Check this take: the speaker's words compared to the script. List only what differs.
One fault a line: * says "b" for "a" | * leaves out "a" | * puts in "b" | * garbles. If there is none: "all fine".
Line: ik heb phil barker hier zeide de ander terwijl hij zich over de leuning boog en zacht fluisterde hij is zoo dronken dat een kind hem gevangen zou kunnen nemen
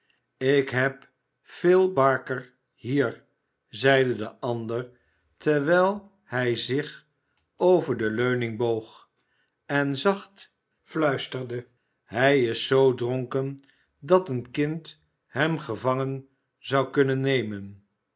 all fine